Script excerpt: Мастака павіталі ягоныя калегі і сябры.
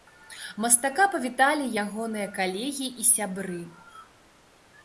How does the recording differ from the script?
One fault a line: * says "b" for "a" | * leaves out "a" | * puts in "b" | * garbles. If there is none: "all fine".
all fine